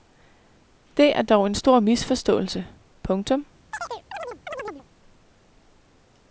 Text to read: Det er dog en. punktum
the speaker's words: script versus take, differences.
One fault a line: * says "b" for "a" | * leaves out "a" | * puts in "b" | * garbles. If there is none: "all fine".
* puts in "stor misforståelse"